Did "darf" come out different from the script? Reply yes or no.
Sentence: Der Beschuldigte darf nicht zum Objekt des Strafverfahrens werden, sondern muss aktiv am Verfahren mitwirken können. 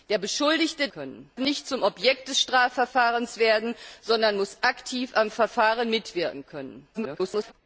yes